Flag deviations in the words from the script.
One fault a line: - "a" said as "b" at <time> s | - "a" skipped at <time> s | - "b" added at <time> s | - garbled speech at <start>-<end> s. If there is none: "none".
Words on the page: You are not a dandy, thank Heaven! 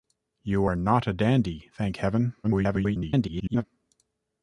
- garbled speech at 2.4-3.6 s